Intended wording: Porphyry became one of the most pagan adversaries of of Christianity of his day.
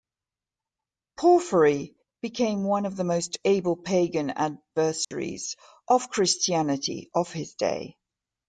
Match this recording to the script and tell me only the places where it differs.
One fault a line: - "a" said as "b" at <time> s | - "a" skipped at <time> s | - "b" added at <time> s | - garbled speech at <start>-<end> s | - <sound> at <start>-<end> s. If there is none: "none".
- "able" added at 3.5 s
- dropout at 5.0-5.1 s
- "of" skipped at 6.1 s